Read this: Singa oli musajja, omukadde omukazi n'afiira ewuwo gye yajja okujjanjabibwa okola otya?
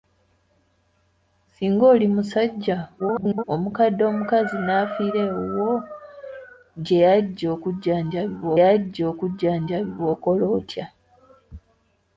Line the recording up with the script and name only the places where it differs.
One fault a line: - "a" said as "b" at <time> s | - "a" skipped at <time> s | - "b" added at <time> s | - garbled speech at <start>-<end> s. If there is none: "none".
- garbled speech at 3.0-3.4 s
- "yajja okujjanjabibwa" added at 8.6 s